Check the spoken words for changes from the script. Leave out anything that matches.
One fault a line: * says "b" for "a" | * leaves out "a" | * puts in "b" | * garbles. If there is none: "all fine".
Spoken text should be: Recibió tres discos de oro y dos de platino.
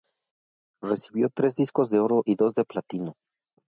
all fine